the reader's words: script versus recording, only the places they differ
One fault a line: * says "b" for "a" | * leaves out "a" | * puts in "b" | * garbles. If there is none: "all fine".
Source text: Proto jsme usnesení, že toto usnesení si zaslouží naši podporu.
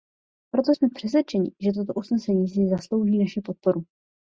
* says "přesvědčeni" for "usnesení"